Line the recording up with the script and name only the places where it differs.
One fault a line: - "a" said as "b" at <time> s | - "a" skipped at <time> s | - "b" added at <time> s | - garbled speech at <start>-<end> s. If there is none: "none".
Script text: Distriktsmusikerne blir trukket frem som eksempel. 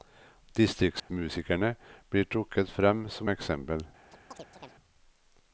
none